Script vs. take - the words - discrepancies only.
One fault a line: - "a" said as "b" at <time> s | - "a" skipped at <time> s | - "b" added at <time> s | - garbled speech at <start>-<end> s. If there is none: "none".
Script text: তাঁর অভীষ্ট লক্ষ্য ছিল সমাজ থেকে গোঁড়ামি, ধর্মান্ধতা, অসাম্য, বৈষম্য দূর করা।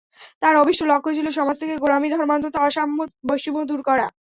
none